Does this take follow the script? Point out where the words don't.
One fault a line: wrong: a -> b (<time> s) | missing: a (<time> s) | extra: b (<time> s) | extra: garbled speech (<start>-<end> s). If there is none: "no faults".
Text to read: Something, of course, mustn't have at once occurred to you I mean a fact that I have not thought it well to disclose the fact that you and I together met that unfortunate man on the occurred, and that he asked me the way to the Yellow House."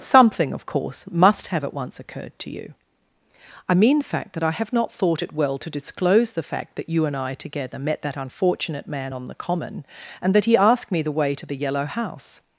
wrong: mustn't -> must (1.1 s)
wrong: a -> the (4.0 s)
wrong: occurred -> common (9.4 s)